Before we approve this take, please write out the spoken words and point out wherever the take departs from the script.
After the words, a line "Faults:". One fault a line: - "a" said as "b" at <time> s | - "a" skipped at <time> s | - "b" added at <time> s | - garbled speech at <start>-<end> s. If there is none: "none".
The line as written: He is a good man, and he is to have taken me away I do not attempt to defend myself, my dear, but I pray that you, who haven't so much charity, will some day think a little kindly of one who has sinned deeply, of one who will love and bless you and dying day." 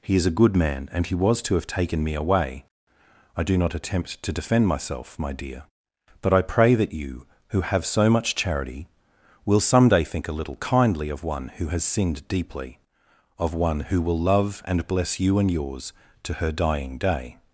He is a good man, and he was to have taken me away I do not attempt to defend myself, my dear, but I pray that you, who have so much charity, will some day think a little kindly of one who has sinned deeply, of one who will love and bless you and yours to her dying day."
Faults:
- "is" said as "was" at 1.1 s
- "haven't" said as "have" at 7.6 s
- "yours to her" added at 15.5 s